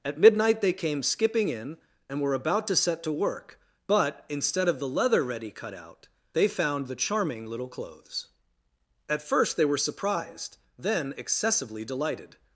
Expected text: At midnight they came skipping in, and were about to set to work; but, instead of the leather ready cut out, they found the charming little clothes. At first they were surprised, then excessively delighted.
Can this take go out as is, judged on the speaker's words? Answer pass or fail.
pass